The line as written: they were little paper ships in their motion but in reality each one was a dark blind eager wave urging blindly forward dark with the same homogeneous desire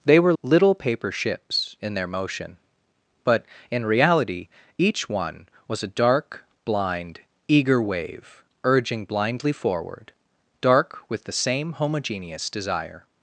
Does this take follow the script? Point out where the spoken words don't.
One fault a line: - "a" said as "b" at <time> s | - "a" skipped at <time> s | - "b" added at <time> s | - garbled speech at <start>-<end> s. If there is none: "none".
none